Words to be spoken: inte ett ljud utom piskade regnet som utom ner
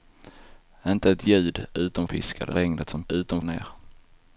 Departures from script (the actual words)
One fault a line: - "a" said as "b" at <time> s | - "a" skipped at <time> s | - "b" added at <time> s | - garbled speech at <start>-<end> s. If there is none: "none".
none